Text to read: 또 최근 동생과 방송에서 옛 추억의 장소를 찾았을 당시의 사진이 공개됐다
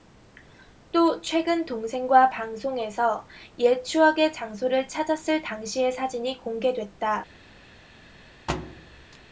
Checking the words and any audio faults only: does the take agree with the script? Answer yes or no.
no